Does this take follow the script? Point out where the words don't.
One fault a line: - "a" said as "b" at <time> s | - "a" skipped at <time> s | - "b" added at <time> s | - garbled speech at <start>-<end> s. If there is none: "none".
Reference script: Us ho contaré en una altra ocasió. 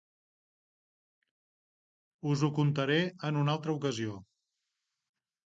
none